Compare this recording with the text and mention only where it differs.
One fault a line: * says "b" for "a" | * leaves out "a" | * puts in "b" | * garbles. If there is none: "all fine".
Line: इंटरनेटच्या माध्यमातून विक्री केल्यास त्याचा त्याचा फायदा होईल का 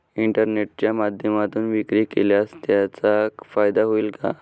* leaves out "त्याचा"